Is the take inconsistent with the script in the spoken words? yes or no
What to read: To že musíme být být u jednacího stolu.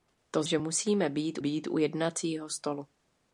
no